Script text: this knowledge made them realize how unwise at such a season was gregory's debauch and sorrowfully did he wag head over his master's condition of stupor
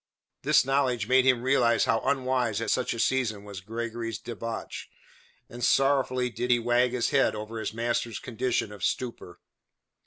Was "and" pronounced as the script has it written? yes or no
yes